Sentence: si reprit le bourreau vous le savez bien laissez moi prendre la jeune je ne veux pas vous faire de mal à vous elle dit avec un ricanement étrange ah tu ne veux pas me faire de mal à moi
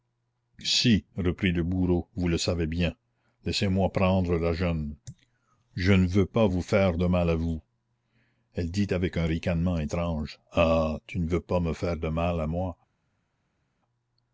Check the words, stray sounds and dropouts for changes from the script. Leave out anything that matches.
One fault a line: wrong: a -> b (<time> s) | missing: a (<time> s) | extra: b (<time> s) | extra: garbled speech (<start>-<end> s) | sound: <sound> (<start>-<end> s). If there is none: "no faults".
no faults